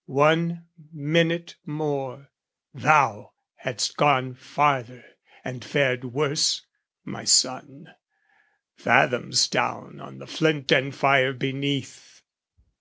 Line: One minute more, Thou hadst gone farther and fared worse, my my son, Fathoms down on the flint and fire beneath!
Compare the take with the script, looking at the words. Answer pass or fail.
fail